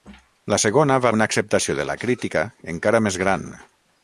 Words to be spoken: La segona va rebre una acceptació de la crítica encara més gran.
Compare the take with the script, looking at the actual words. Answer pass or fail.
fail